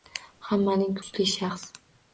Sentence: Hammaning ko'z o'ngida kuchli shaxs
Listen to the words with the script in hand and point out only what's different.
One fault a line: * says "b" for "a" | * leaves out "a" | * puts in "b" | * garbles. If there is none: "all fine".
* leaves out "ko'z o'ngida"